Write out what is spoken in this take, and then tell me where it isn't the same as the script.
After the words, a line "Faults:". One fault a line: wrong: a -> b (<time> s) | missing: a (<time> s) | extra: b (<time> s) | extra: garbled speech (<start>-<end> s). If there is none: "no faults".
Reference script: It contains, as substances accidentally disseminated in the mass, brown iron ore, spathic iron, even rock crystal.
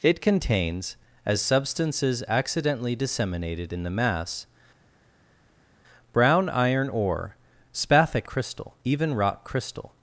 It contains, as substances accidentally disseminated in the mass, brown iron ore, spathic crystal, even rock crystal.
Faults:
wrong: iron -> crystal (8.3 s)